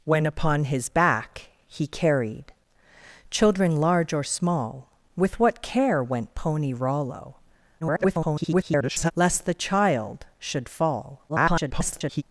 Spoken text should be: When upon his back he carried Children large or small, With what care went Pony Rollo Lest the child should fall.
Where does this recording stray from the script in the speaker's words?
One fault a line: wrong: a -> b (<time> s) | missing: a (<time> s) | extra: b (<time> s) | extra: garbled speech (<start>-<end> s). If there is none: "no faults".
extra: garbled speech (7.8-9.1 s)
extra: garbled speech (11.3-12.2 s)